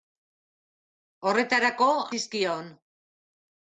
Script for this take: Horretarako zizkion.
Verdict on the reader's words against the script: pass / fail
pass